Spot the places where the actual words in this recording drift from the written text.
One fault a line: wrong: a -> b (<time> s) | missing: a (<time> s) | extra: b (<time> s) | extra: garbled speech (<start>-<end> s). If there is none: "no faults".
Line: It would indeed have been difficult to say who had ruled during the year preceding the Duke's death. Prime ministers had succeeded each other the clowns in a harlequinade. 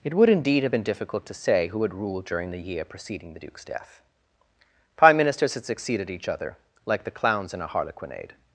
extra: like (6.9 s)